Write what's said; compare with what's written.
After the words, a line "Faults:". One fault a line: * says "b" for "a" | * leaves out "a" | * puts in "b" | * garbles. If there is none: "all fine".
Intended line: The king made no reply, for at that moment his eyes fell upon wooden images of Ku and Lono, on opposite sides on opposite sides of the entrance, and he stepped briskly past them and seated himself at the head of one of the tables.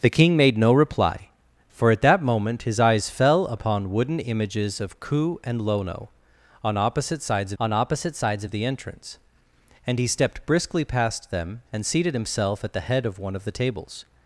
The king made no reply, for at that moment his eyes fell upon wooden images of Ku and Lono, on opposite sides on opposite sides of the entrance, and he stepped briskly past them and seated himself at the head of one of the tables.
Faults:
all fine